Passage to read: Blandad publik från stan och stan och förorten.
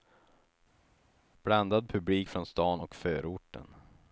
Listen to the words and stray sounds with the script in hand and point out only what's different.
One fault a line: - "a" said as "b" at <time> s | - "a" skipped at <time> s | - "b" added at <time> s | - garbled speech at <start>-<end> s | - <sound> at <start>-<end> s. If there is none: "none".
- "stan och" skipped at 3.0 s